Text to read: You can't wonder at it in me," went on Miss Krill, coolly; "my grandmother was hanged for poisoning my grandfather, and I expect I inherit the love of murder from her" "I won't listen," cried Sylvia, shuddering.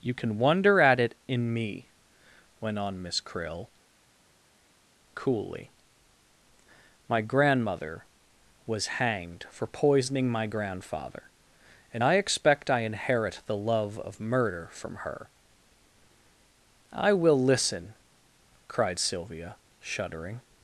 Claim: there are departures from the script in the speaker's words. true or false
true